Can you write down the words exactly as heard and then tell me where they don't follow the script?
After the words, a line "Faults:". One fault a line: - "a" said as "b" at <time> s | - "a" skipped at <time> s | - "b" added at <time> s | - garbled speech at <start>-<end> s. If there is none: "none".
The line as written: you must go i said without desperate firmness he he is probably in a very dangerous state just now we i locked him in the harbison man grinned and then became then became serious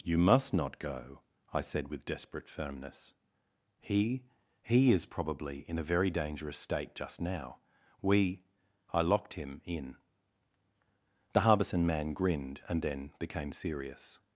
you must not go i said with desperate firmness he he is probably in a very dangerous state just now we i locked him in the harbison man grinned and then became serious
Faults:
- "not" added at 0.5 s
- "without" said as "with" at 1.9 s
- "then became" skipped at 13.5 s